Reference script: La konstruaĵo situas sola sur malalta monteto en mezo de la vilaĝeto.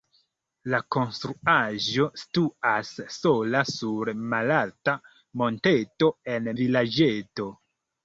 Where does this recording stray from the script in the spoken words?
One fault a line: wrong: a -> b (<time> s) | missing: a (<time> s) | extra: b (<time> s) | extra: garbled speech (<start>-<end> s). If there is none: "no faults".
missing: mezo de la (6.5 s)